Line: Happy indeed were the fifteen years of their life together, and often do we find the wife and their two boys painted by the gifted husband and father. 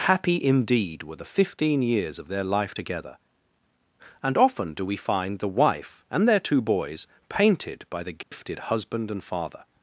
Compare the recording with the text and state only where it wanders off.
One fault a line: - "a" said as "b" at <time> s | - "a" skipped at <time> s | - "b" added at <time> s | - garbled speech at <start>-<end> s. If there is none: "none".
none